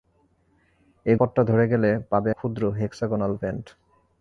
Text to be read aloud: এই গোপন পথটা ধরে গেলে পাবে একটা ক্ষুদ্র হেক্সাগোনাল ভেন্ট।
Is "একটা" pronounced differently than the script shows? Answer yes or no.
yes